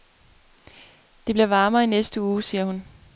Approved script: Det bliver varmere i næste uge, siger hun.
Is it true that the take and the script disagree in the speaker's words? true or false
false